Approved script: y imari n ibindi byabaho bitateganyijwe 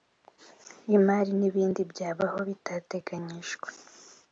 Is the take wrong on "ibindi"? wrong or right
right